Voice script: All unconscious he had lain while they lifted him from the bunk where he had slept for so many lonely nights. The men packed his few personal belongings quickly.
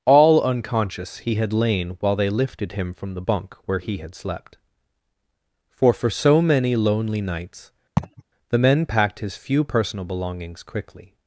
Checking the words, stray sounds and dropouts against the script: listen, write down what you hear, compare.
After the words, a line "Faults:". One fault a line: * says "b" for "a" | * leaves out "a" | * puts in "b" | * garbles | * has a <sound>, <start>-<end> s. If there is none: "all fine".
All unconscious he had lain while they lifted him from the bunk where he had slept for for so many lonely nights. The men packed his few personal belongings quickly.
Faults:
* puts in "for"
* has a laugh, 8.0-8.2 s